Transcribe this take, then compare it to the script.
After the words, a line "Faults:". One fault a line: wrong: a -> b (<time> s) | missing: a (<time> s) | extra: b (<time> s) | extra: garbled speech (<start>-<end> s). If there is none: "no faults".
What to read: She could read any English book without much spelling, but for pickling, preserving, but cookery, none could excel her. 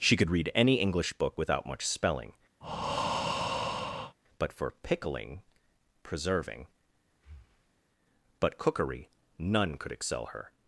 She could read any English book without much spelling, but for pickling, preserving, but cookery, none could excel her.
Faults:
no faults